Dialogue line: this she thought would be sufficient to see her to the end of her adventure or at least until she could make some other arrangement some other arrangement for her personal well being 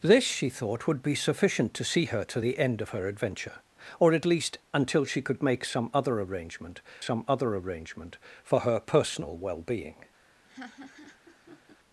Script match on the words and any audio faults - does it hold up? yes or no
no